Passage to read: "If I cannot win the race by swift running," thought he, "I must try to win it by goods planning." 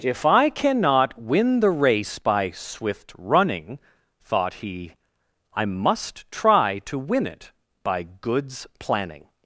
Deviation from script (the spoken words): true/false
false